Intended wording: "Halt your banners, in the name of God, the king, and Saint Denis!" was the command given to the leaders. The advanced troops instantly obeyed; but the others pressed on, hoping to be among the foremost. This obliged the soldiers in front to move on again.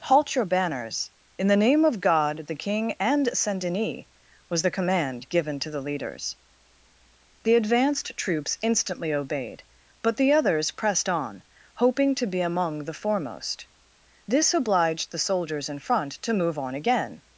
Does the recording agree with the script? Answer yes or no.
yes